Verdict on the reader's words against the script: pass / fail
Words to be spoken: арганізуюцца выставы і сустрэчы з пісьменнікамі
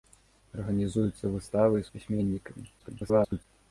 fail